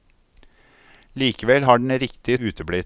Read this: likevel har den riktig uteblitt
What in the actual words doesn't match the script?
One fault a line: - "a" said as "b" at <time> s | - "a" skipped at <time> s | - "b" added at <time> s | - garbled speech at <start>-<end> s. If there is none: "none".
none